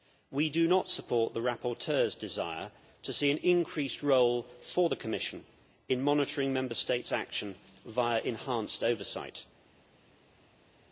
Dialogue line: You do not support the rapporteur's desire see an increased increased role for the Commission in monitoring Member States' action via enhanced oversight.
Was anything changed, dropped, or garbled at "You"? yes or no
yes